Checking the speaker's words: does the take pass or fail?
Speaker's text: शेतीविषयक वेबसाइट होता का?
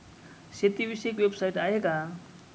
fail